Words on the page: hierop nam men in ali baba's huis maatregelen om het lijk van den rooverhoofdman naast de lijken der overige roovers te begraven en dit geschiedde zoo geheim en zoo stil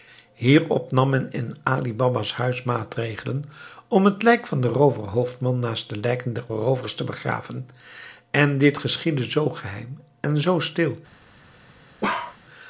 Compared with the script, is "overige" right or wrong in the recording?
wrong